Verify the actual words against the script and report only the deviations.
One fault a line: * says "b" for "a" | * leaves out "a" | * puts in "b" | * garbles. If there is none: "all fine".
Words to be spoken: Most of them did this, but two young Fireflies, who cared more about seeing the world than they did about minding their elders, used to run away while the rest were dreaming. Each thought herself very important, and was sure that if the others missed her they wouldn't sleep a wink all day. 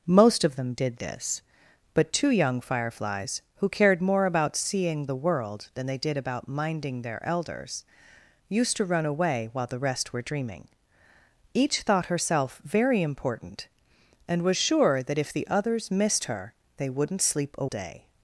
* leaves out "wink all"